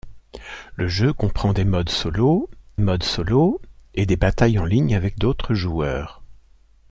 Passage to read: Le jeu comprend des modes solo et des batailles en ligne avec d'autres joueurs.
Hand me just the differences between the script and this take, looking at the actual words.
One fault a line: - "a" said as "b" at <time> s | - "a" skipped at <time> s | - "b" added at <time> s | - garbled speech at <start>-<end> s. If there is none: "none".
- "modes solo" added at 2.8 s